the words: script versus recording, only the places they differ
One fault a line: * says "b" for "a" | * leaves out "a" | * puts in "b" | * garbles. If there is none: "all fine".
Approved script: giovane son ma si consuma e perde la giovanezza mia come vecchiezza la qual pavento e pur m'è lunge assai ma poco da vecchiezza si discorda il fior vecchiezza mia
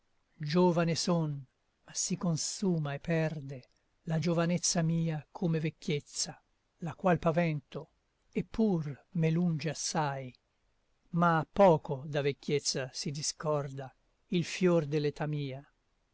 * says "dell'età" for "vecchiezza"